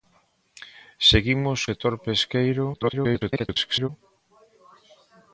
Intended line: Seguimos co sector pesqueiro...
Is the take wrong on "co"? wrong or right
wrong